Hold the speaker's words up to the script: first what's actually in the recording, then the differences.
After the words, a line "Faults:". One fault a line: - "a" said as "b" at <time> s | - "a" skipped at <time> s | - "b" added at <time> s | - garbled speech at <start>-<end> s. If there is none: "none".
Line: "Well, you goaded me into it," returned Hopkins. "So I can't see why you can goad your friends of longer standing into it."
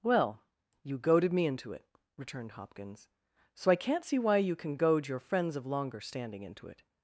"Well, you goaded me into it," returned Hopkins. "So I can't see why you can goad your friends of longer standing into it."
Faults:
none